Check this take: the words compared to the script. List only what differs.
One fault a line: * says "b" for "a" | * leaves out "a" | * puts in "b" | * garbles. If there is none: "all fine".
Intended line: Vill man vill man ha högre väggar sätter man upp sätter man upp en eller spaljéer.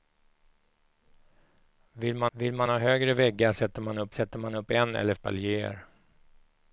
all fine